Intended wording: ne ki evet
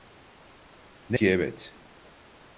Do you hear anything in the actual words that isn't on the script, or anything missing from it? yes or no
no